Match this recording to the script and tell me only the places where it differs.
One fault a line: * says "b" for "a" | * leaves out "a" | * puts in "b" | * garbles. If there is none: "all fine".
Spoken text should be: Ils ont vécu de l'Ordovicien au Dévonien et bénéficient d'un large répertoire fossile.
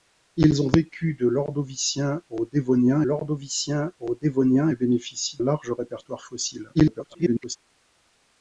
* puts in "l'Ordovicien au Dévonien"
* leaves out "d'un"
* garbles